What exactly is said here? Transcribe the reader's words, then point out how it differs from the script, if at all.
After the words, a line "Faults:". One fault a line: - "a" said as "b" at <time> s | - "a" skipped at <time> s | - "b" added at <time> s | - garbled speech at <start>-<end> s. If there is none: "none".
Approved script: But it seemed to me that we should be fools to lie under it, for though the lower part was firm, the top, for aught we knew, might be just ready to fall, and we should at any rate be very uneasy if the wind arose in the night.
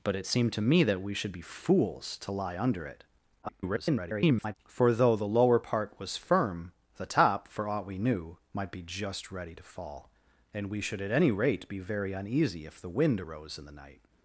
But it seemed to me that we should be fools to lie under it, [garbled] for though the lower part was firm, the top, for aught we knew, might be just ready to fall, and we should at any rate be very uneasy if the wind arose in the night.
Faults:
- garbled speech at 3.4-4.6 s